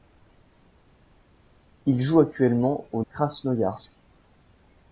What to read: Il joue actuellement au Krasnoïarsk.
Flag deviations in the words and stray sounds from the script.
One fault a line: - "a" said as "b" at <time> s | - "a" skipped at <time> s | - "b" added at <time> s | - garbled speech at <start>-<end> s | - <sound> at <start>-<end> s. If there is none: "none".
none